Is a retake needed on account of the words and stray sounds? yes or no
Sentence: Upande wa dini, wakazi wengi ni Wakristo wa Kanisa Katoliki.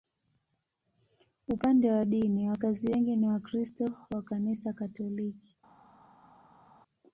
no